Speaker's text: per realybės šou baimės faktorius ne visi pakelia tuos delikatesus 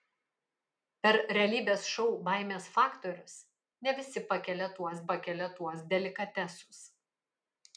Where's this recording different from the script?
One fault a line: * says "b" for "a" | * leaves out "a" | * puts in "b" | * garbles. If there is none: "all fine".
* puts in "pakelia tuos"